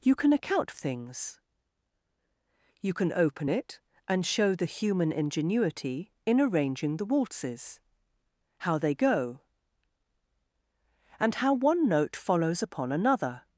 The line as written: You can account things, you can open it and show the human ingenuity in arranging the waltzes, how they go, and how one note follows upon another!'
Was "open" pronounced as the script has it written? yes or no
yes